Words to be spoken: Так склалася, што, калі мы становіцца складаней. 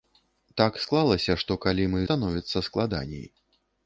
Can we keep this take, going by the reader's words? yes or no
yes